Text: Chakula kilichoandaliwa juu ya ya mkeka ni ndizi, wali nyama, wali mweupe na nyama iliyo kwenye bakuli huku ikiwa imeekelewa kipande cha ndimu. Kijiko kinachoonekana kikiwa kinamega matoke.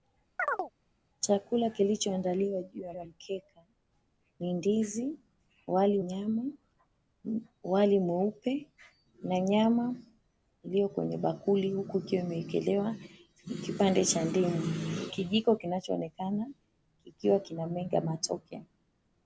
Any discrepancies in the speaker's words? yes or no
no